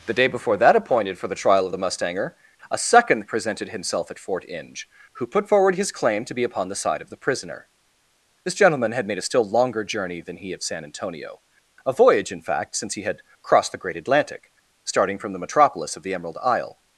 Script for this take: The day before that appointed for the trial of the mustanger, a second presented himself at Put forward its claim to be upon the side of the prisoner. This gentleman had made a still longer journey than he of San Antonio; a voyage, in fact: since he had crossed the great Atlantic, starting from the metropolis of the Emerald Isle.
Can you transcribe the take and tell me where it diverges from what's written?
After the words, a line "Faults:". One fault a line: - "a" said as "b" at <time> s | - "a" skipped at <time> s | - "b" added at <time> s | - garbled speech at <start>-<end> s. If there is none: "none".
The day before that appointed for the trial of the mustanger, a second presented himself at Fort Inge, who put forward his claim to be upon the side of the prisoner. This gentleman had made a still longer journey than he of San Antonio; a voyage, in fact: since he had crossed the great Atlantic, starting from the metropolis of the Emerald Isle.
Faults:
- "Fort Inge who" added at 4.2 s
- "its" said as "his" at 5.7 s